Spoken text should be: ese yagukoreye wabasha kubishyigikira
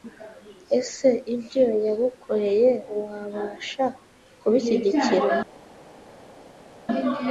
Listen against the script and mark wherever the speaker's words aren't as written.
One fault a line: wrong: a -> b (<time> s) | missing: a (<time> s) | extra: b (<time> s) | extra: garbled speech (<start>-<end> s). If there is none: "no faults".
extra: ibyo (1.4 s)